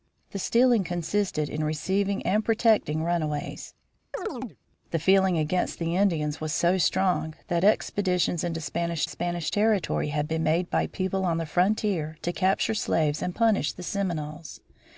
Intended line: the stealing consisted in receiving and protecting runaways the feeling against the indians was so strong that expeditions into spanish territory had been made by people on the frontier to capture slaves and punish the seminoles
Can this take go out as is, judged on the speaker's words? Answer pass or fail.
fail